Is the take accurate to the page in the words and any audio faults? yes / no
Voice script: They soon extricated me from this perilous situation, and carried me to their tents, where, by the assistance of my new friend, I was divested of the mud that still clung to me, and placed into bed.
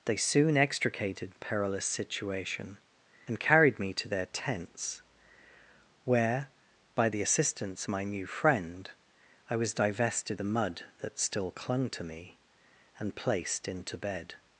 no